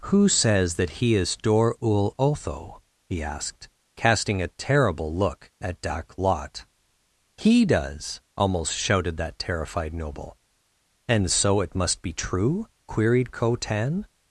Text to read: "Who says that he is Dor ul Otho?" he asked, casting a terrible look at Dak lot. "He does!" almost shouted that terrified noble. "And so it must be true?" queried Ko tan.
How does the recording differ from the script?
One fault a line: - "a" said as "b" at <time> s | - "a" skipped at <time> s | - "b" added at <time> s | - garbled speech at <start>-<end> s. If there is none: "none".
none